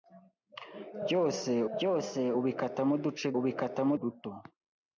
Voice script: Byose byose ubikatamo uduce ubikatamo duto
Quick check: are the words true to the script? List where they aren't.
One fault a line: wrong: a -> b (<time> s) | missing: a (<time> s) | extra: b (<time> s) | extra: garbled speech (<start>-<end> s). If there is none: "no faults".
no faults